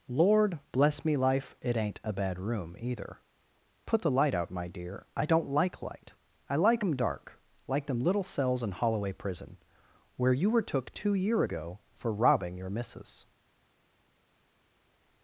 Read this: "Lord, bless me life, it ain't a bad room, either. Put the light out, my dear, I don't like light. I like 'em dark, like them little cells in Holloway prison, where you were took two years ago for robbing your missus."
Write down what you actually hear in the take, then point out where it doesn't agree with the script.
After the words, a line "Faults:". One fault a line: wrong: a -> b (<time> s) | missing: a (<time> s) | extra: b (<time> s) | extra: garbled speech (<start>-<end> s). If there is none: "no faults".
"Lord, bless me life, it ain't a bad room, either. Put the light out, my dear, I don't like light. I like 'em dark, like them little cells in Holloway prison, where you were took two year ago for robbing your missus."
Faults:
wrong: years -> year (11.1 s)